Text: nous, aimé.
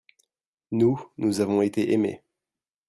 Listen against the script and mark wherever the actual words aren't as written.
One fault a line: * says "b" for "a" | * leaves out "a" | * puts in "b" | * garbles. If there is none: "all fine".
* puts in "nous avons été"